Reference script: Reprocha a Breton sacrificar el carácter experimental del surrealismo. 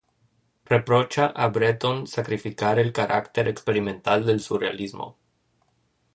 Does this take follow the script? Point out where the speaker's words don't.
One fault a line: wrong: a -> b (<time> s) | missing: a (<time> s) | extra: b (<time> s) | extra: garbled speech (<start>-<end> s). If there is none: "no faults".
no faults